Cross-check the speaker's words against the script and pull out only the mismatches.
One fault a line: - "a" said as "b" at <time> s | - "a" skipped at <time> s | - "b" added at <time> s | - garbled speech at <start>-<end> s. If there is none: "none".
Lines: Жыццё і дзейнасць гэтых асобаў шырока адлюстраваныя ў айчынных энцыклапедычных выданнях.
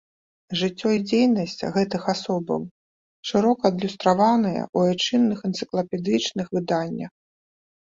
none